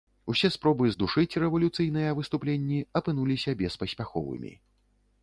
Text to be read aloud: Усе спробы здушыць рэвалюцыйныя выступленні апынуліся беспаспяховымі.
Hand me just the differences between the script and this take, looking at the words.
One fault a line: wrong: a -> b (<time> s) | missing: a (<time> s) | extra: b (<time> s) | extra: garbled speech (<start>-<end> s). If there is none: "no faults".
no faults